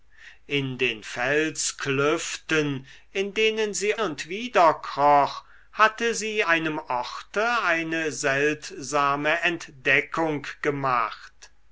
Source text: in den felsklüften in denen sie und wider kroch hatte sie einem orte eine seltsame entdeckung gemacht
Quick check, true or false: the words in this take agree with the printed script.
true